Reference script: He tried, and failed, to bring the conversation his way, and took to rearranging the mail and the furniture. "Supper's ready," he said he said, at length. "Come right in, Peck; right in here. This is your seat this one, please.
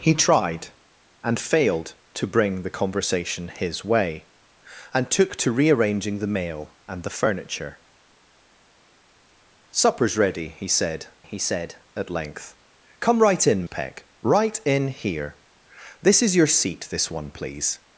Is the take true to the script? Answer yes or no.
yes